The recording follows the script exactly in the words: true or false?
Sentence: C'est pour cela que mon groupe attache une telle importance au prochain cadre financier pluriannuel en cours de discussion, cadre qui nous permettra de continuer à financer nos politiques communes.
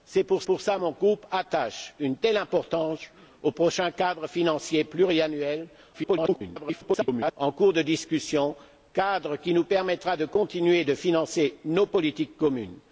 false